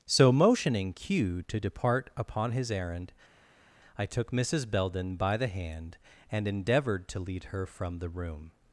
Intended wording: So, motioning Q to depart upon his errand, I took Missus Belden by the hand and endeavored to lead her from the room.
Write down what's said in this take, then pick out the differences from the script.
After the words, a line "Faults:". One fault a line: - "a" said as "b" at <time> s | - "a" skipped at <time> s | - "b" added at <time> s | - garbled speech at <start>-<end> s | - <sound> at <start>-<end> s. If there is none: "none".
So, motioning Q to depart upon his errand, I took Missus Belden by the hand and endeavored to lead her from the room.
Faults:
none